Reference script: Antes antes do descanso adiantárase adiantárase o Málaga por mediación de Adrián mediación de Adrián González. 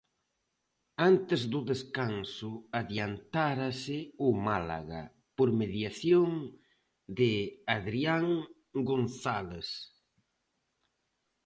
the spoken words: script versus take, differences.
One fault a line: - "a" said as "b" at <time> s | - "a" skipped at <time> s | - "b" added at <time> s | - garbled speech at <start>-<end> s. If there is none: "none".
- "antes" skipped at 1.4 s
- "adiantárase" skipped at 4.0 s
- "mediación de Adrián" skipped at 8.3 s